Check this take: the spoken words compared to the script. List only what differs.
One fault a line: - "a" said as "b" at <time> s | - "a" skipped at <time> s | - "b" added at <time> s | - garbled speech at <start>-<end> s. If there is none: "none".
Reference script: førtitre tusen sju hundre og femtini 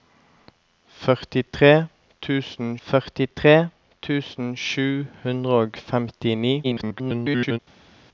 - "førtitre tusen" added at 2.9 s
- garbled speech at 6.6-7.6 s